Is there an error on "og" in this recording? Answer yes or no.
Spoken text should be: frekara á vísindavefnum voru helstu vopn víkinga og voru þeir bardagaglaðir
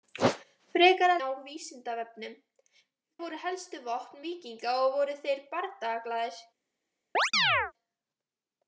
no